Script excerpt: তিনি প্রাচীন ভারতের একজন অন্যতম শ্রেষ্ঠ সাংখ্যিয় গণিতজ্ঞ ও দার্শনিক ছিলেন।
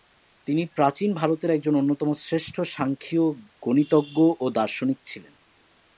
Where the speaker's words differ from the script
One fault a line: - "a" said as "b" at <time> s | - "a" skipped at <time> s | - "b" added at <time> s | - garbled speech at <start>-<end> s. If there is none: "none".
none